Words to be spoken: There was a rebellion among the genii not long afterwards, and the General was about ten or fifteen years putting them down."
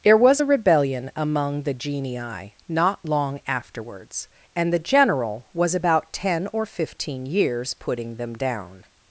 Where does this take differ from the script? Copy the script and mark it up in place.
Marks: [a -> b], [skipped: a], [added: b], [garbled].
There was a rebellion among the genii not long afterwards, and the General was about ten or fifteen years putting them down."